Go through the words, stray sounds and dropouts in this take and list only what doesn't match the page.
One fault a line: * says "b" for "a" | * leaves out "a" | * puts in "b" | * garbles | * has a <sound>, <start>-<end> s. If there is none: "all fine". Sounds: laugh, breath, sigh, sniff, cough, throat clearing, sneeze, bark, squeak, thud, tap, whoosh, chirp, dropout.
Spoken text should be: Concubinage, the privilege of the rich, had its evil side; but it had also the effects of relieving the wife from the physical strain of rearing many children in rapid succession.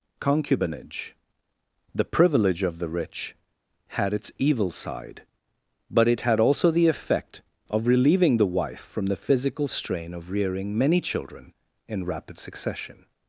* says "effect" for "effects"